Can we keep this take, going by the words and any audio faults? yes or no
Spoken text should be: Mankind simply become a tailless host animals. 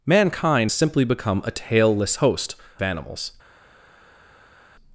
yes